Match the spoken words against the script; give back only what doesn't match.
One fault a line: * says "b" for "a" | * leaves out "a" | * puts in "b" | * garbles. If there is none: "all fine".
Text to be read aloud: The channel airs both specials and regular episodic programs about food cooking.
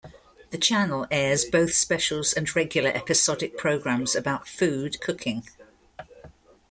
all fine